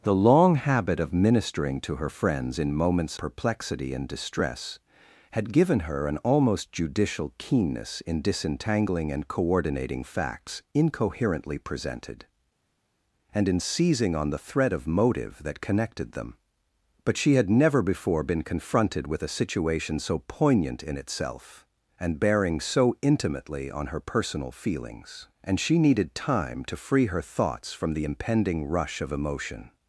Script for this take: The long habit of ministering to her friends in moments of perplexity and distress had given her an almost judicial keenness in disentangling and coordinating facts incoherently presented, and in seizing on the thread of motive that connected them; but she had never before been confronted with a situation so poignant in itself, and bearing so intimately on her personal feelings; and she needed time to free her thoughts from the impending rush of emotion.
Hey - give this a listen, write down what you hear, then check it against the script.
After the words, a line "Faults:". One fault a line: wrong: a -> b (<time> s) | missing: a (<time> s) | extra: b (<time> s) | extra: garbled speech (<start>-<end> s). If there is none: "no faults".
The long habit of ministering to her friends in moments perplexity and distress had given her an almost judicial keenness in disentangling and coordinating facts incoherently presented, and in seizing on the thread of motive that connected them; but she had never before been confronted with a situation so poignant in itself, and bearing so intimately on her personal feelings; and she needed time to free her thoughts from the impending rush of emotion.
Faults:
missing: of (3.2 s)